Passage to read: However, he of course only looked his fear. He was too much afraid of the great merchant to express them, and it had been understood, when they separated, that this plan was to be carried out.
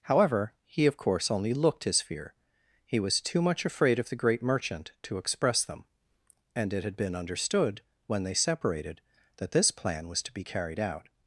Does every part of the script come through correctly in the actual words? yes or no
yes